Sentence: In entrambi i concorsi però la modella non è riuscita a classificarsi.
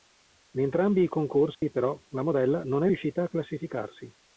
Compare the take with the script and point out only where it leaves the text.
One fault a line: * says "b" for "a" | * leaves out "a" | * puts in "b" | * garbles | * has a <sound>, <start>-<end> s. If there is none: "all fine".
* has a dropout, 1.5-1.6 s